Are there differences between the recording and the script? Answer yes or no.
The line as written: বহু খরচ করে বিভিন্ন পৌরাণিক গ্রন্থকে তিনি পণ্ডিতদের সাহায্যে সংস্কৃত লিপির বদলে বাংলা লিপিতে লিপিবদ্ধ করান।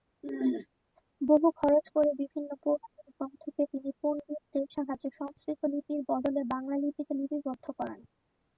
no